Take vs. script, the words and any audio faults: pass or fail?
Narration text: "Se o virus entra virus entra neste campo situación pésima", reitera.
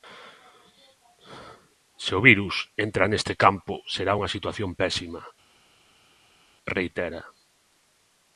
fail